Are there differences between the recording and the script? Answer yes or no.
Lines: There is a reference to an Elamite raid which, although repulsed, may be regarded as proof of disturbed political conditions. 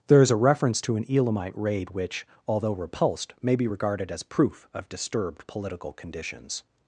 no